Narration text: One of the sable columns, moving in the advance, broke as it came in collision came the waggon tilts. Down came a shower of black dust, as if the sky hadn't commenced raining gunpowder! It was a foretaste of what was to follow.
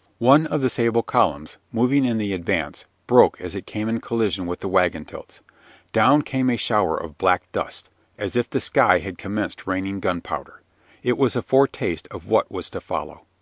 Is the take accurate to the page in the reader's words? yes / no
no